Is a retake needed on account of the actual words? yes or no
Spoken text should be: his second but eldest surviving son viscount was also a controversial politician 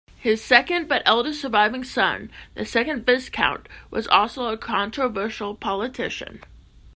yes